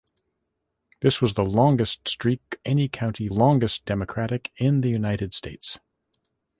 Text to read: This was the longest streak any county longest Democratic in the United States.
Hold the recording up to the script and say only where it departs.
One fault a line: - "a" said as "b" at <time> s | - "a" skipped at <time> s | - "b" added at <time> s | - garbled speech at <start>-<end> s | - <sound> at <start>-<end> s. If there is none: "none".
none